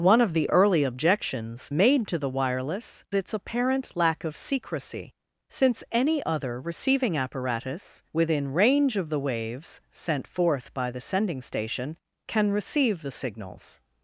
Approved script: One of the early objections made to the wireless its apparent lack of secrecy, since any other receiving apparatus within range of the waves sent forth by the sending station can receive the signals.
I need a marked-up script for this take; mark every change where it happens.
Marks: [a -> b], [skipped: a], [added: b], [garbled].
One of the early objections made to the wireless its apparent lack of secrecy, since any other receiving apparatus within range of the waves sent forth by the sending station can receive the signals.